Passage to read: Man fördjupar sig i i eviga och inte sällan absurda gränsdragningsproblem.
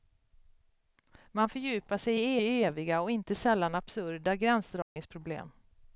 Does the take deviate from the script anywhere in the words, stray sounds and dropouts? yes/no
yes